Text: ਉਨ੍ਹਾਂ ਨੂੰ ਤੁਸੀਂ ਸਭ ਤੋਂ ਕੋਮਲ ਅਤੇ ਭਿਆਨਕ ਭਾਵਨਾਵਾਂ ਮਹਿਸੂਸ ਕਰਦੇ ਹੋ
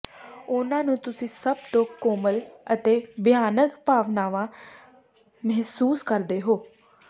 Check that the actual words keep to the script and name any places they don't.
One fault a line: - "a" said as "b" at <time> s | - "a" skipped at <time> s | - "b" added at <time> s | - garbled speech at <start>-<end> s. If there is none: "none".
none